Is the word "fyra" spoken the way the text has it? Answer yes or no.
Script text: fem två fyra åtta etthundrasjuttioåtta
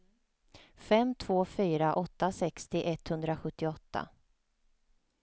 yes